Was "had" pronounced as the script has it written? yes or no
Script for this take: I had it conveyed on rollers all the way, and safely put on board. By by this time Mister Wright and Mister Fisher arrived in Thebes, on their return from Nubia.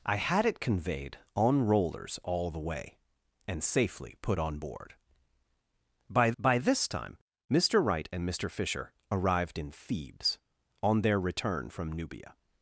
yes